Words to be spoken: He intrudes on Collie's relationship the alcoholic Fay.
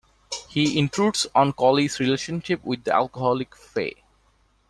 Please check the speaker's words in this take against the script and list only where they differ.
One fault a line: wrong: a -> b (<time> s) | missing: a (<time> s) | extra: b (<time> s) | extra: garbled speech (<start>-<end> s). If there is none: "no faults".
extra: with (2.6 s)